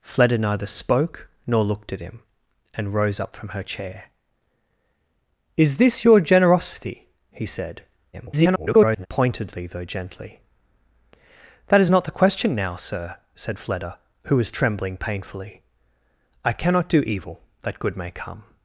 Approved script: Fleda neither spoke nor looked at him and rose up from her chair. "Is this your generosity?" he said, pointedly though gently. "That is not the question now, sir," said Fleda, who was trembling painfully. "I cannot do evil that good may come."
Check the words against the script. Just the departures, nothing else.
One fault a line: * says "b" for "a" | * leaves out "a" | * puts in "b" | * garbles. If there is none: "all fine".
* garbles